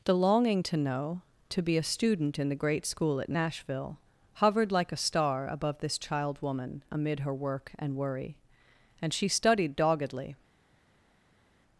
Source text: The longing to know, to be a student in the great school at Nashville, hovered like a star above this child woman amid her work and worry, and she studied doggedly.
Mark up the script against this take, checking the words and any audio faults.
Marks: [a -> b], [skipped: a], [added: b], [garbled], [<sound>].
The longing to know, to be a student in the great school at Nashville, hovered like a star above this child woman amid her work and worry, and she studied doggedly.